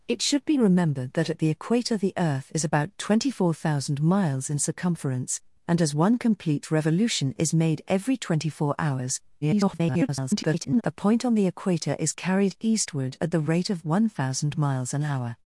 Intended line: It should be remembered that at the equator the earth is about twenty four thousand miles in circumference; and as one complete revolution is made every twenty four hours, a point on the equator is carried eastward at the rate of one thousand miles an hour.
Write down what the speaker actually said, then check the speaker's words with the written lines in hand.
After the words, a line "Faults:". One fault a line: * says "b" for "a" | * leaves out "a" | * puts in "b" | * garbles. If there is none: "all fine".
It should be remembered that at the equator the earth is about twenty four thousand miles in circumference; and as one complete revolution is made every twenty four hours, [garbled] a point on the equator is carried eastward at the rate of one thousand miles an hour.
Faults:
* garbles